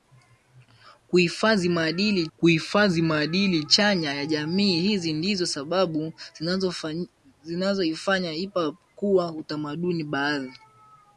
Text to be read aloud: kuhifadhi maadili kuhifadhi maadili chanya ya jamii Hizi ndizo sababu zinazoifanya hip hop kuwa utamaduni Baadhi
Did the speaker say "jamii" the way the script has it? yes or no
yes